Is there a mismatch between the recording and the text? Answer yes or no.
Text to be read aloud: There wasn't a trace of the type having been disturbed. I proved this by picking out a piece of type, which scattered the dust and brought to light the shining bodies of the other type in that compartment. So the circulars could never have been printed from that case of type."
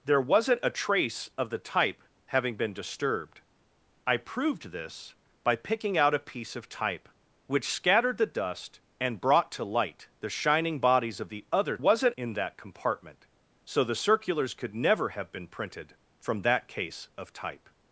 yes